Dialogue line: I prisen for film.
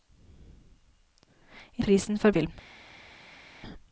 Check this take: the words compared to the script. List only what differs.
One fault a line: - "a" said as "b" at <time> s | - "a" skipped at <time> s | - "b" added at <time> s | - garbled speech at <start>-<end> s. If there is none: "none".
none